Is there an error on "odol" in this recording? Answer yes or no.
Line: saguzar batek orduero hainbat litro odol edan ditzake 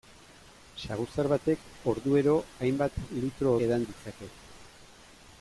yes